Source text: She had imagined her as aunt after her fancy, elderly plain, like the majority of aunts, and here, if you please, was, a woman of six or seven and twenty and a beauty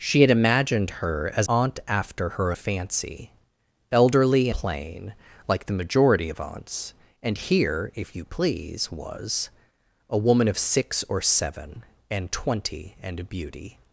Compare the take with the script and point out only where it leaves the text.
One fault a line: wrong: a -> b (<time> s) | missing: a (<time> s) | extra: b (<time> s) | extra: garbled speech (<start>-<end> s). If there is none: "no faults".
no faults